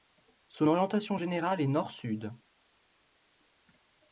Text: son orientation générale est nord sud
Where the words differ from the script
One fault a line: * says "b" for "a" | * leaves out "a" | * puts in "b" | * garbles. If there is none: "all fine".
all fine